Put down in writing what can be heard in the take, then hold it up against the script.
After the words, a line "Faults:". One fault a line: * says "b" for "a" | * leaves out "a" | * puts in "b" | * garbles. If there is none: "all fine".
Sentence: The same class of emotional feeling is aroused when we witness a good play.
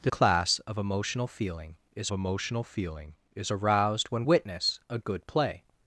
The class of emotional feeling is emotional feeling is aroused when witness a good play.
Faults:
* leaves out "same"
* puts in "emotional feeling is"
* leaves out "we"